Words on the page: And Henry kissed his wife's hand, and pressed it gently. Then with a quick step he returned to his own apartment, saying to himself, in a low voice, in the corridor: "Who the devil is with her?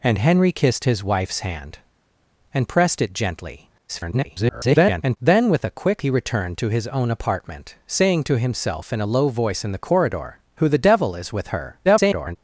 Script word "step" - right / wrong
wrong